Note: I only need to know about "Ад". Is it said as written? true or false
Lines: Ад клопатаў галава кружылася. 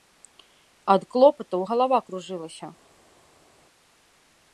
true